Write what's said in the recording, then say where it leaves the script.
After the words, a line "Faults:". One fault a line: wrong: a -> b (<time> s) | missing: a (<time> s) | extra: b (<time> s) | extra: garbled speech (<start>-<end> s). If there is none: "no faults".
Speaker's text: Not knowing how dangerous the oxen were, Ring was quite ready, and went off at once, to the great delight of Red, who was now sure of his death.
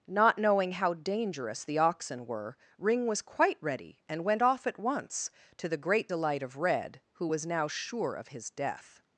Not knowing how dangerous the oxen were, Ring was quite ready, and went off at once, to the great delight of Red, who was now sure of his death.
Faults:
no faults